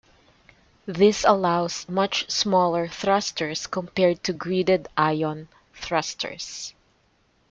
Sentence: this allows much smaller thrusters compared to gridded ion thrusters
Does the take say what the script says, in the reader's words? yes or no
yes